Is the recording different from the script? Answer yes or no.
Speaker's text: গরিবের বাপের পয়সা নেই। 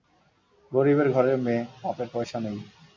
yes